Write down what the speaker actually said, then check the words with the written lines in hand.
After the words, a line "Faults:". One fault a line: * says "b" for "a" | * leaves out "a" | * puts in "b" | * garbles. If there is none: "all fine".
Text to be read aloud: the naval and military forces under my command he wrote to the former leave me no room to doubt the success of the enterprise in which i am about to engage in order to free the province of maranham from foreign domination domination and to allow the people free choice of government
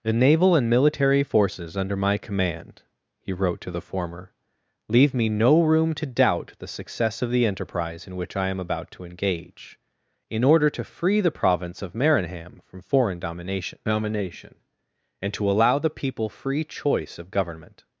the naval and military forces under my command he wrote to the former leave me no room to doubt the success of the enterprise in which i am about to engage in order to free the province of maranham from foreign domination domination and to allow the people free choice of government
Faults:
all fine